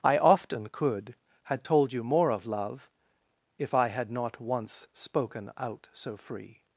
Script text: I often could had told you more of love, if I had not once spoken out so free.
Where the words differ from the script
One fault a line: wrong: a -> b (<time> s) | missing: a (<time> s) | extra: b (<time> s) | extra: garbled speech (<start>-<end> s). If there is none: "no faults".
no faults